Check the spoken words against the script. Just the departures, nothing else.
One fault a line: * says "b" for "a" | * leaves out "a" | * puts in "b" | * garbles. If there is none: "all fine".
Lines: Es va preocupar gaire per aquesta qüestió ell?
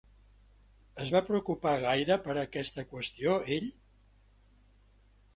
all fine